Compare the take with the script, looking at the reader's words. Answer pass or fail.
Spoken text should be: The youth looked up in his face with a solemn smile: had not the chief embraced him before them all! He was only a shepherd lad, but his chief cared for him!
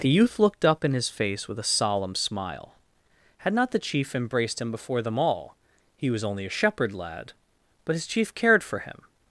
pass